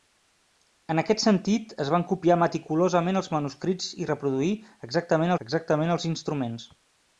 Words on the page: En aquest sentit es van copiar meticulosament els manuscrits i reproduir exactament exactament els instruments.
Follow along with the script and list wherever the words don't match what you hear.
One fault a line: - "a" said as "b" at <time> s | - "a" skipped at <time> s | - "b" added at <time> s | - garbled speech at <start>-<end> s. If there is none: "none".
none